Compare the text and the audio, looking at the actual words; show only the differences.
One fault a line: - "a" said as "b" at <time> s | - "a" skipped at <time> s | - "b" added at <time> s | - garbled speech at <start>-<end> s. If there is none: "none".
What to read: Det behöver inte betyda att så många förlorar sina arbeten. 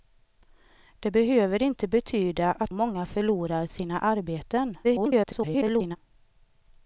- "så" skipped at 2.7 s
- garbled speech at 4.8-6.0 s